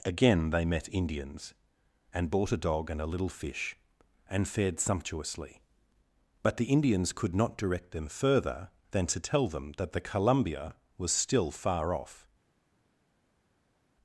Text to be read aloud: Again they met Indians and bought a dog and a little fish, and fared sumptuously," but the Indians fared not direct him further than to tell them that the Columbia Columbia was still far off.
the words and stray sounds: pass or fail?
fail